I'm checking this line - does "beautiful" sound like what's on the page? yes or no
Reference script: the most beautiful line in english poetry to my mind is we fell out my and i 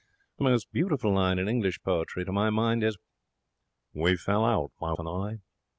yes